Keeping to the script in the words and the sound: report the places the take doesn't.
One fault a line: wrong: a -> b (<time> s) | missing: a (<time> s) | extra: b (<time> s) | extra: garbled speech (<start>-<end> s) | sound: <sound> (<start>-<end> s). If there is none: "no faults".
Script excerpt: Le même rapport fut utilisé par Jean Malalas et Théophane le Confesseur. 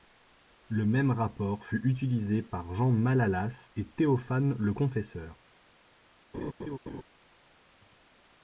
sound: laugh (6.3-7.0 s)